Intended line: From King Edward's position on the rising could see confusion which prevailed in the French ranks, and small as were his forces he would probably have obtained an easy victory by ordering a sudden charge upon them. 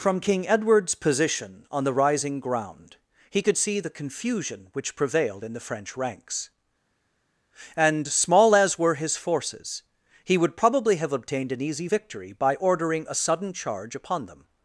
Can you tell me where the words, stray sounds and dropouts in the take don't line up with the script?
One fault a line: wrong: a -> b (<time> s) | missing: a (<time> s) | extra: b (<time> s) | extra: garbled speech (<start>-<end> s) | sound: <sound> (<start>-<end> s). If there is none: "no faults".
extra: ground he (2.4 s)
extra: the (3.8 s)